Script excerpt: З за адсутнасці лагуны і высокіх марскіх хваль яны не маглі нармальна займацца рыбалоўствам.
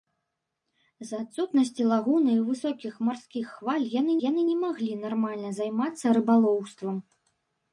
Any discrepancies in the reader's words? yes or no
yes